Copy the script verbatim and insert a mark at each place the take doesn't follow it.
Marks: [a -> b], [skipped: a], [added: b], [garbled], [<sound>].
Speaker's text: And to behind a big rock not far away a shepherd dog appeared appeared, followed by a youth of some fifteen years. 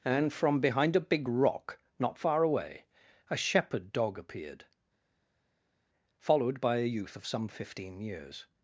And [to -> from] behind a big rock not far away a shepherd dog appeared [skipped: appeared,] followed by a youth of some fifteen years.